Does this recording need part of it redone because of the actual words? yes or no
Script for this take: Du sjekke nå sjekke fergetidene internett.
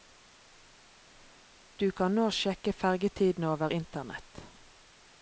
yes